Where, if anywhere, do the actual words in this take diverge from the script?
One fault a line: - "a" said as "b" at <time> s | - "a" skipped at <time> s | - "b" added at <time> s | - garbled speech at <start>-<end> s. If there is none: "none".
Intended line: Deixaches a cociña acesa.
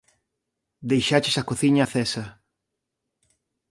none